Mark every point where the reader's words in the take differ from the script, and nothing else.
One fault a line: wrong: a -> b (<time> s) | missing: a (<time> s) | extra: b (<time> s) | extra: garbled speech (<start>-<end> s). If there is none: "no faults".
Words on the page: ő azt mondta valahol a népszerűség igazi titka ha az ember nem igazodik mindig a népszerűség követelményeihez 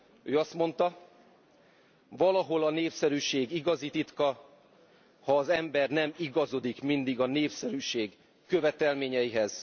no faults